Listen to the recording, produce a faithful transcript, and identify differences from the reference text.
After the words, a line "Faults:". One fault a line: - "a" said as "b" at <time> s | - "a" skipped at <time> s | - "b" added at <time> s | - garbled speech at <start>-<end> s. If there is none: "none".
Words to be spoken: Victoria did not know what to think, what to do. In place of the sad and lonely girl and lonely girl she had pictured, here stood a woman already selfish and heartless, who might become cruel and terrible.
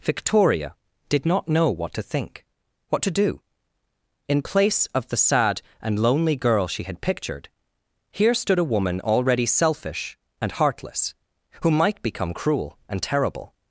Victoria did not know what to think, what to do. In place of the sad and lonely girl she had pictured, here stood a woman already selfish and heartless, who might become cruel and terrible.
Faults:
- "and lonely girl" skipped at 6.7 s